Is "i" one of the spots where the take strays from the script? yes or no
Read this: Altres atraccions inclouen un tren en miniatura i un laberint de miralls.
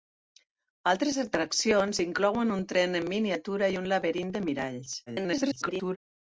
no